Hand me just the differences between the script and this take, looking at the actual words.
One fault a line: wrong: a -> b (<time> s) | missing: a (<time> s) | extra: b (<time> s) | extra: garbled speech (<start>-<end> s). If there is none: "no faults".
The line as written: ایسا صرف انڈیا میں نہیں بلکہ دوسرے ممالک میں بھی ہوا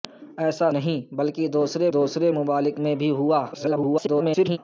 missing: صرف انڈیا میں (0.7 s)
extra: دوسرے (1.9 s)
extra: garbled speech (3.5-4.6 s)